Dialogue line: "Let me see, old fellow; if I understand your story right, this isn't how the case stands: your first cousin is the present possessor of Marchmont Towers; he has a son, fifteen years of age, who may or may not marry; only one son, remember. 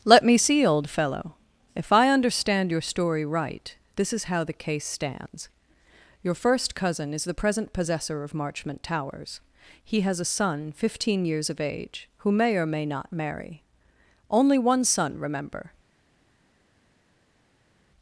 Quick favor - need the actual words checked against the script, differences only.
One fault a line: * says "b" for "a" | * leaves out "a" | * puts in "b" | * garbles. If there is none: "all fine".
* says "is" for "isn't"